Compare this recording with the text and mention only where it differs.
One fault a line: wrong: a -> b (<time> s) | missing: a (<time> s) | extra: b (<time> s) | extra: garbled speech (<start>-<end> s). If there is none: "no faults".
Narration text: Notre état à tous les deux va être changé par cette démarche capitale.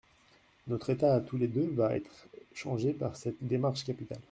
no faults